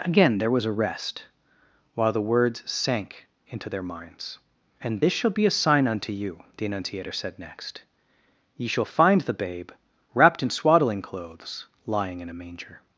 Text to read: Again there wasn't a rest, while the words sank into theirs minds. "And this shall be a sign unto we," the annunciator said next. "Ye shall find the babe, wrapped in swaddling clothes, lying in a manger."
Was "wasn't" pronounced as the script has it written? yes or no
no